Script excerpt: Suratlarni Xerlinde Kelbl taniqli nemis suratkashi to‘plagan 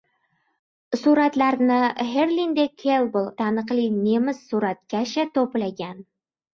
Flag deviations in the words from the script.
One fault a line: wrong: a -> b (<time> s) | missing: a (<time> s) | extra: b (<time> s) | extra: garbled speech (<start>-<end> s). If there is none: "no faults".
no faults